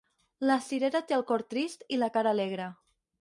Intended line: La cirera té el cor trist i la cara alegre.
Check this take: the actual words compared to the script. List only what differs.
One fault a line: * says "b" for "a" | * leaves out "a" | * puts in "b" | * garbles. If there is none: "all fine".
all fine